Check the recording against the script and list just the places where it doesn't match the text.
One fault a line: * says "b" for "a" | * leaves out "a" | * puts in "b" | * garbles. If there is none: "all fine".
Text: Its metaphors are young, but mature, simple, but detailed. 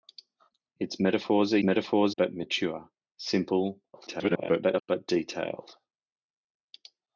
* says "metaphors" for "young"
* garbles